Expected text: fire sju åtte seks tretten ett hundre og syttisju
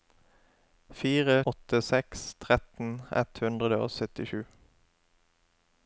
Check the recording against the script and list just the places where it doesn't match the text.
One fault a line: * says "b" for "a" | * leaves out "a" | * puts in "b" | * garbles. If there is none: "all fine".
* leaves out "sju"